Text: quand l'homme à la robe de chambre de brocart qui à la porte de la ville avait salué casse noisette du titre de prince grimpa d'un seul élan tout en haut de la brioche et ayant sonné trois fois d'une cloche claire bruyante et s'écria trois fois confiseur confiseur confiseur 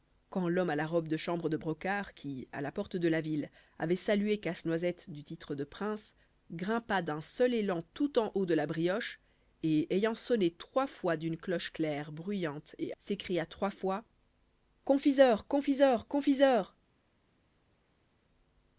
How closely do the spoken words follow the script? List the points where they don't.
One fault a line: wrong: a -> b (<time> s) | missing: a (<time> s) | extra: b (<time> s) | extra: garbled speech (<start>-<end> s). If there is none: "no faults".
no faults